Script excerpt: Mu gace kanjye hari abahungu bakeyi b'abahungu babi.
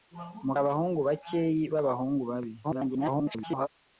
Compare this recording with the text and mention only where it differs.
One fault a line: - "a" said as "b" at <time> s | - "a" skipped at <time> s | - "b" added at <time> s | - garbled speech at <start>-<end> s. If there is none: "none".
- "gace kanjye hari" skipped at 0.5 s
- garbled speech at 2.6-3.7 s